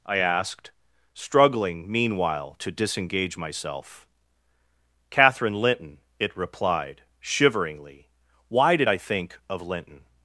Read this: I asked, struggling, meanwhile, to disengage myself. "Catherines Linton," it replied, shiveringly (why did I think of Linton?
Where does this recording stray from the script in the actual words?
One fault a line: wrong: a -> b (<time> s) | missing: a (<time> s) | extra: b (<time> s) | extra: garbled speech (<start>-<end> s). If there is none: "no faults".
wrong: Catherines -> Catherine (5.1 s)